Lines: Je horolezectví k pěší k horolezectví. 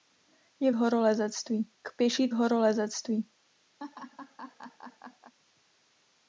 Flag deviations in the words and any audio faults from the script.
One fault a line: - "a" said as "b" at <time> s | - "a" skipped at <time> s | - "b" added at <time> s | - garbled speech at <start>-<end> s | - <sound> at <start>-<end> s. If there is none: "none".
- laugh at 3.8-5.3 s